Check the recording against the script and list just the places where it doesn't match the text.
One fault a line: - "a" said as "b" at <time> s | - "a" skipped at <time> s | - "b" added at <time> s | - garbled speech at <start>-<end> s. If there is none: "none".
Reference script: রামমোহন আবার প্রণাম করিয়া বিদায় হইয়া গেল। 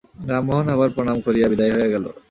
none